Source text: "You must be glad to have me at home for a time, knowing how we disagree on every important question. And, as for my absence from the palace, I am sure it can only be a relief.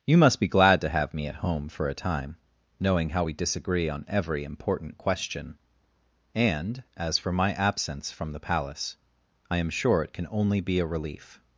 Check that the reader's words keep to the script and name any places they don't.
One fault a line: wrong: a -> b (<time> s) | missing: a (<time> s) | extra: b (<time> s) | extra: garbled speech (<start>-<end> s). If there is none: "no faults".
no faults